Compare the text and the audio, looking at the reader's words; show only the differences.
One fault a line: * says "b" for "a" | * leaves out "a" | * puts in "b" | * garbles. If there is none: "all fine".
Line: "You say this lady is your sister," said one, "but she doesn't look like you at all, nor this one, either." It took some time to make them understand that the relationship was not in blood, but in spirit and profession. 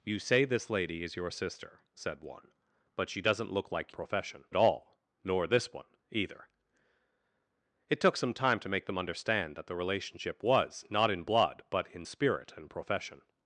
* says "profession" for "you"